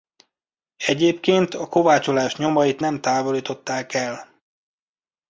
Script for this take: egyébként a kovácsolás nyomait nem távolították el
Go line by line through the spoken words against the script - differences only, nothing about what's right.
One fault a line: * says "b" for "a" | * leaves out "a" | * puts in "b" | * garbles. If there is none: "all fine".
all fine